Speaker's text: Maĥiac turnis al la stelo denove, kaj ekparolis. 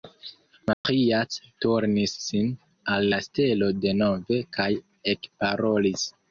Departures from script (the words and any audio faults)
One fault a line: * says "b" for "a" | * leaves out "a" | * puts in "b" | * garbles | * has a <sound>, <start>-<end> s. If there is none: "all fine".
* has a dropout, 0.7-0.8 s
* puts in "sin"